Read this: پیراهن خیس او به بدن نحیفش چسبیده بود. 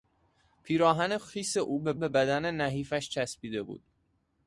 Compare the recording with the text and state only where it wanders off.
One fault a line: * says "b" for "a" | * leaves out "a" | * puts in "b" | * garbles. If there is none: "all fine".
* puts in "به"